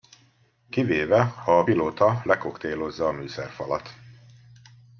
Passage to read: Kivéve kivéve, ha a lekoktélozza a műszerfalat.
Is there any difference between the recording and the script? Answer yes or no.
yes